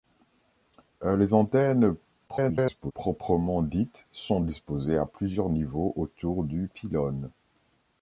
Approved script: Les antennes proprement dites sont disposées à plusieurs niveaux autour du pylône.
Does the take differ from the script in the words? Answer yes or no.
yes